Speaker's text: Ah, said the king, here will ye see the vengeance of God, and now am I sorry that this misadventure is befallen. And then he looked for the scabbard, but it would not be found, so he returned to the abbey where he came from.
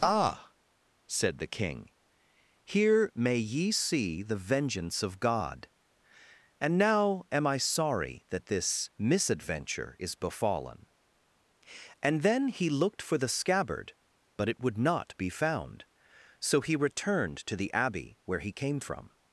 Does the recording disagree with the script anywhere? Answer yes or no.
yes